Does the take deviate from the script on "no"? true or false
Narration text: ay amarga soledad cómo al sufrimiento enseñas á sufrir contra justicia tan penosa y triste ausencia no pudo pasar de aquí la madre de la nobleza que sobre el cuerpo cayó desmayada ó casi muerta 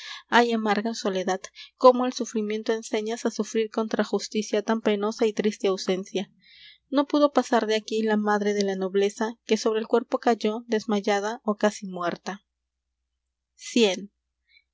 false